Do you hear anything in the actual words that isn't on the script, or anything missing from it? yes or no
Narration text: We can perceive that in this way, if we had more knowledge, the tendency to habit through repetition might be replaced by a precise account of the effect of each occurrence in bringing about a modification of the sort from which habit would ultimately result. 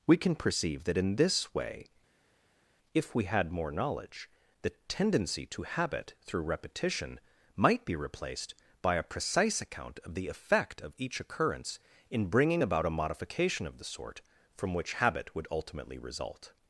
no